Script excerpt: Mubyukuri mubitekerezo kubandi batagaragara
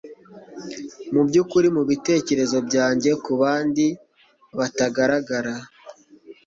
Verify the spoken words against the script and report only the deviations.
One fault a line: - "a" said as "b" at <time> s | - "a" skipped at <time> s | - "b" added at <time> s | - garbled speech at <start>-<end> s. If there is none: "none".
- "byanjye" added at 2.7 s